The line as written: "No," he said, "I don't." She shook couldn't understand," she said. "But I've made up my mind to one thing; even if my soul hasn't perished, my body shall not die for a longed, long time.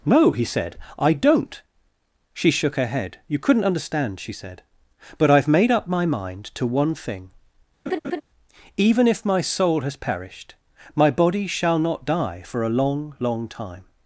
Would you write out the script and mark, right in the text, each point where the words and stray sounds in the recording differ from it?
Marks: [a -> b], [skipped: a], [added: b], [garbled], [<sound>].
"No," he said, "I don't." She shook [added: her head You] couldn't understand," she said. "But I've made up my mind to one thing; [laugh] even if my soul [hasn't -> has] perished, my body shall not die for a [longed, -> long] long time.